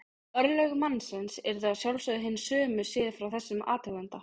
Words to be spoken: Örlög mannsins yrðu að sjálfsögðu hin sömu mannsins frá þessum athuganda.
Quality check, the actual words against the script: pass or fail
fail